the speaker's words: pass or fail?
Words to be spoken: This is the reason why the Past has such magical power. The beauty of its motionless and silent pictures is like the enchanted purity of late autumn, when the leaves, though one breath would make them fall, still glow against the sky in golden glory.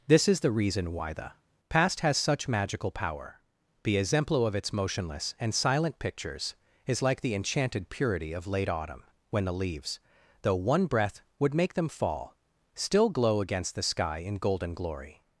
fail